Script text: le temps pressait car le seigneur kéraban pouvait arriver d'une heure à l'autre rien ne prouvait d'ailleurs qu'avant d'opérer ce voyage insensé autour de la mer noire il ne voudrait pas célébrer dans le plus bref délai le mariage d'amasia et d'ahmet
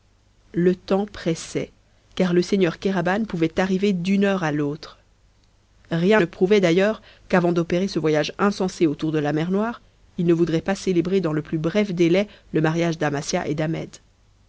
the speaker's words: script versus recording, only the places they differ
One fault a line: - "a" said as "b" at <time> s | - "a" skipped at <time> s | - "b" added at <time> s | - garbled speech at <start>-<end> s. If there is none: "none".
none